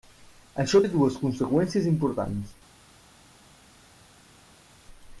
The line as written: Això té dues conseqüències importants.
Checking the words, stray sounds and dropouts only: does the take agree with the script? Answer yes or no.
yes